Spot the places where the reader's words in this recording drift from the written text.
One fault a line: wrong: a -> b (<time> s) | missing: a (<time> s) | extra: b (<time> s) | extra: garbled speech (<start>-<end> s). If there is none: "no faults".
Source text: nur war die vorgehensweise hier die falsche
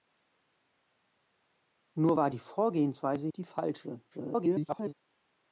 missing: hier (3.3 s)
extra: garbled speech (4.1-4.9 s)